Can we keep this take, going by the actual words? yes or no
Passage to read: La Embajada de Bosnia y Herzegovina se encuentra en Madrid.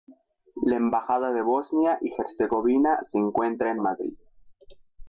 yes